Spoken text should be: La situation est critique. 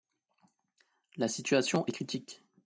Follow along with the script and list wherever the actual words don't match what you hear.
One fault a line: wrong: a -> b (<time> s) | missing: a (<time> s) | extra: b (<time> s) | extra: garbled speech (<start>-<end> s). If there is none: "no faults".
no faults